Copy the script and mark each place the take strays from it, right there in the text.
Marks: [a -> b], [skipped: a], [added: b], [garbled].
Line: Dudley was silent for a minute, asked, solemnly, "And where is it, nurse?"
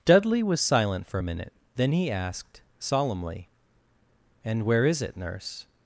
Dudley was silent for a minute, [added: then he] asked, solemnly, "And where is it, nurse?"